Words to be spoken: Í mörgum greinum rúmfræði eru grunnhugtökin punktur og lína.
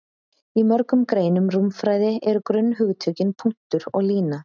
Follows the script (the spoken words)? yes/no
yes